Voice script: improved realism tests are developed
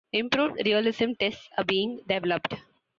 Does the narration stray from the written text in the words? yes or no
yes